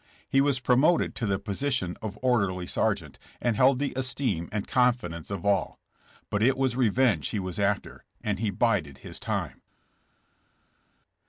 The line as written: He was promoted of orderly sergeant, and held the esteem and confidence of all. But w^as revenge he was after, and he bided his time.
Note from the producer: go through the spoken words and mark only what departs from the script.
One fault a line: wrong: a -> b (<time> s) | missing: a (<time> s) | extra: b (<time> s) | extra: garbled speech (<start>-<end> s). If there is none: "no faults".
extra: to the position (1.1 s)
extra: it (6.4 s)